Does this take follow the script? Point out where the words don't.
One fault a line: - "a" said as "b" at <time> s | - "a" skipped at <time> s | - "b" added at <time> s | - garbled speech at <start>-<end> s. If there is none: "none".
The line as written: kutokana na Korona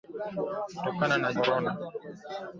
none